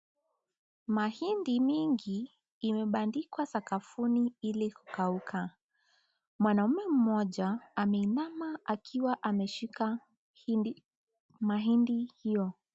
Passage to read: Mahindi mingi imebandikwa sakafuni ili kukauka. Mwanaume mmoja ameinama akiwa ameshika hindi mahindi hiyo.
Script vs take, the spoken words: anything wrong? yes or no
no